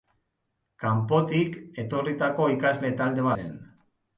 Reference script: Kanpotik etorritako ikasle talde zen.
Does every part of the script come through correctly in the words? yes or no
yes